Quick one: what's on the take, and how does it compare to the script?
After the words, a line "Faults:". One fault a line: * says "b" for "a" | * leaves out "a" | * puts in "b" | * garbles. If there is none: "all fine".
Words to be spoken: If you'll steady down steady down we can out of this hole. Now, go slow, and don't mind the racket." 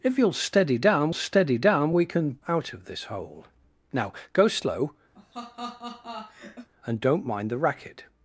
If you'll steady down steady down we can out of this hole. Now, go slow, and don't mind the racket."
Faults:
all fine